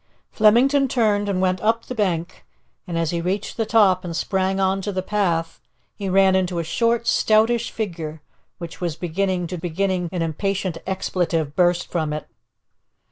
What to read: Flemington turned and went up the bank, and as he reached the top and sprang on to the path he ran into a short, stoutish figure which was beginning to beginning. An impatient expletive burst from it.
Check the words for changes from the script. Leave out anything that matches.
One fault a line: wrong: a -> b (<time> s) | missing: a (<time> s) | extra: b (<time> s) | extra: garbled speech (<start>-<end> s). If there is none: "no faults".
no faults